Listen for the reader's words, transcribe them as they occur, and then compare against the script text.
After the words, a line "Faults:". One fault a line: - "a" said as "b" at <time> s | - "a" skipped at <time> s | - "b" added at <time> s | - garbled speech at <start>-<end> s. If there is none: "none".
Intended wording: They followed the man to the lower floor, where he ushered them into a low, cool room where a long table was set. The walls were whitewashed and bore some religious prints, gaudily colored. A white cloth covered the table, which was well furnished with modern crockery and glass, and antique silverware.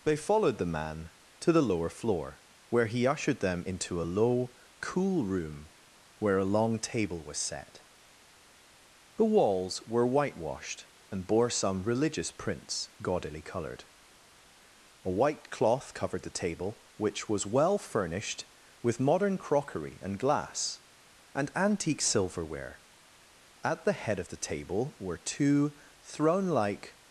They followed the man to the lower floor, where he ushered them into a low, cool room where a long table was set. The walls were whitewashed and bore some religious prints, gaudily colored. A white cloth covered the table, which was well furnished with modern crockery and glass, and antique silverware. At the head of the table were two throne like
Faults:
- "At the head of the table were two throne like" added at 23.6 s